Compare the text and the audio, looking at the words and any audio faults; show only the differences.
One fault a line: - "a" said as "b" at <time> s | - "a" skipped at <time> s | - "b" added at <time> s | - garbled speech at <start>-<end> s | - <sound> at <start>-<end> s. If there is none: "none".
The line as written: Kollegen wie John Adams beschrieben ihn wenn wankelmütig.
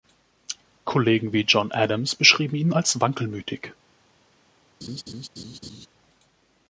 - "wenn" said as "als" at 2.7 s
- laugh at 4.8-5.9 s